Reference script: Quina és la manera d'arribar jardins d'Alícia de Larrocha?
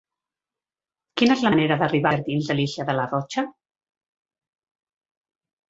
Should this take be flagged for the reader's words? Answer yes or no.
no